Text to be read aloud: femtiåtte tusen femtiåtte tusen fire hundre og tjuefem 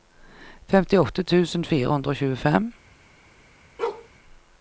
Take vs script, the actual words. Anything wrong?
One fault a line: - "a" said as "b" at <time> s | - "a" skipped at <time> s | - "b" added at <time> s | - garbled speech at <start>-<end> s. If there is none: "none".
- "femtiåtte tusen" skipped at 1.7 s